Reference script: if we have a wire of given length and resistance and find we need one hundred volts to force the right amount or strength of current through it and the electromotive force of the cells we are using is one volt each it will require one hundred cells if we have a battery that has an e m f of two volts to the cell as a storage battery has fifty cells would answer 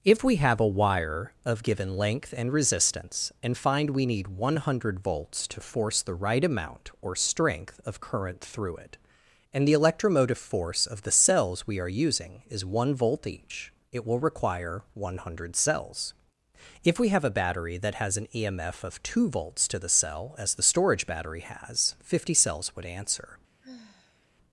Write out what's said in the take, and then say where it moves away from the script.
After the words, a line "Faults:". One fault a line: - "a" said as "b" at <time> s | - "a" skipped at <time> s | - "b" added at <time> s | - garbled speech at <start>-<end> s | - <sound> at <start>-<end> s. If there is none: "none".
if we have a wire of given length and resistance and find we need one hundred volts to force the right amount or strength of current through it and the electromotive force of the cells we are using is one volt each it will require one hundred cells if we have a battery that has an e m f of two volts to the cell as the storage battery has fifty cells would answer
Faults:
- "a" said as "the" at 20.6 s
- sigh at 23.6-24.3 s